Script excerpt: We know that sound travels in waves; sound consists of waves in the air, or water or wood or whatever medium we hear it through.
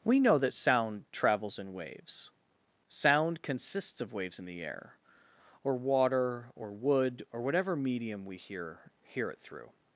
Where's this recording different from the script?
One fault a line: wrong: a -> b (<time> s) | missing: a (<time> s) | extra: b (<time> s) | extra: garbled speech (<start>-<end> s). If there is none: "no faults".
extra: hear (9.0 s)